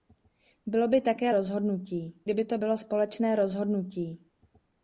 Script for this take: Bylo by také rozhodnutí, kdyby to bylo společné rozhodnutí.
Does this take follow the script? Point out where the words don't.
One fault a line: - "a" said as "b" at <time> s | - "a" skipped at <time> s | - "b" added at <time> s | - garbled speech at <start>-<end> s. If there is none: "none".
none